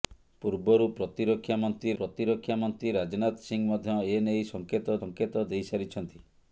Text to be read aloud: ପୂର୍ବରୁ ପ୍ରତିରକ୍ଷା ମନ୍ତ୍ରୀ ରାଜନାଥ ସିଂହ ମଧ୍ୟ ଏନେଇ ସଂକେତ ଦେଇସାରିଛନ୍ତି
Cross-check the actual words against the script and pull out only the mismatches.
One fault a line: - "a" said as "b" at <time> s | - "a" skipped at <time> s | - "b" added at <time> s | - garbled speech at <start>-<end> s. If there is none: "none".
- "ପ୍ରତିରକ୍ଷା ମନ୍ତ୍ରୀ" added at 2.0 s
- "ସଂକେତ" added at 5.0 s